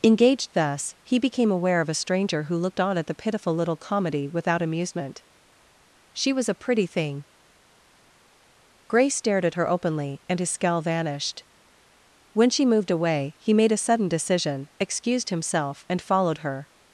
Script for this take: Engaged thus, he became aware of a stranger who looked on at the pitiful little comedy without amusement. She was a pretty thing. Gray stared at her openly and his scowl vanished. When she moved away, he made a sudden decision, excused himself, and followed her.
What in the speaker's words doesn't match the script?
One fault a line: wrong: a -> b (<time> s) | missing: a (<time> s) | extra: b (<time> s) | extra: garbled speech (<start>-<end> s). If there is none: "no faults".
no faults